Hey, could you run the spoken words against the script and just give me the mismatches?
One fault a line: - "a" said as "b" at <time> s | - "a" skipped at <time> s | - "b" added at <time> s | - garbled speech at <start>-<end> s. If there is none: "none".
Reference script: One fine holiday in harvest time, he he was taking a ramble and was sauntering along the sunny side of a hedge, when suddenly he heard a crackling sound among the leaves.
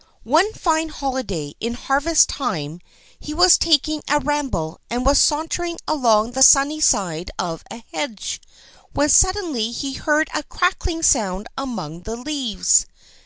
- "he" skipped at 3.4 s